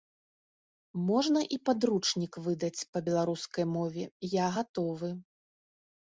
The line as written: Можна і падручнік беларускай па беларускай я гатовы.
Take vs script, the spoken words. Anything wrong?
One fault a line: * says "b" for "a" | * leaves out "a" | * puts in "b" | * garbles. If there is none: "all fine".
* says "выдаць" for "беларускай"
* puts in "мове"